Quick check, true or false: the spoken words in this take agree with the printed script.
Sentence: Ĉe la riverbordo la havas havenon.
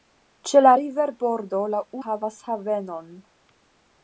true